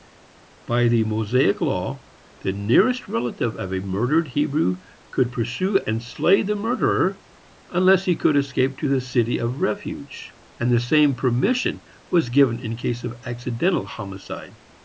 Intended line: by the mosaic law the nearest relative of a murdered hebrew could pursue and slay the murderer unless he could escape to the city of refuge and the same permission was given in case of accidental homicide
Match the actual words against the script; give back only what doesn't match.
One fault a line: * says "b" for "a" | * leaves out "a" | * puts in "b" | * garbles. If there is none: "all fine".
all fine